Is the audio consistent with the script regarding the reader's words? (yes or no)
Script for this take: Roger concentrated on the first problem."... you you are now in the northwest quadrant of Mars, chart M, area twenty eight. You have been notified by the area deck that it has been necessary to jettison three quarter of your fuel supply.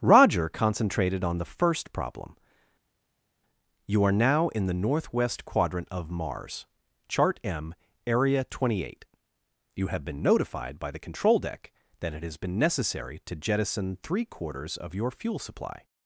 no